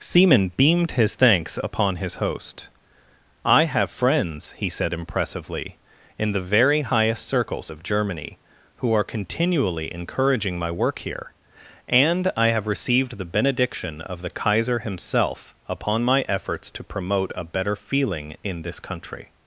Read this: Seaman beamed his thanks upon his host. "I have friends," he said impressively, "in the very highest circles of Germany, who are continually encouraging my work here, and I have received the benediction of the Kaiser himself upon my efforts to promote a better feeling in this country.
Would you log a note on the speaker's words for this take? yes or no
no